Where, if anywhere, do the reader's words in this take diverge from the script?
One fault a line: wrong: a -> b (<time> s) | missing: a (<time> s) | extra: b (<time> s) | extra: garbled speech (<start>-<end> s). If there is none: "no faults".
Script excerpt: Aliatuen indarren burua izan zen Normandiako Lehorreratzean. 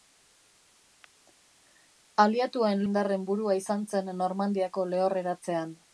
no faults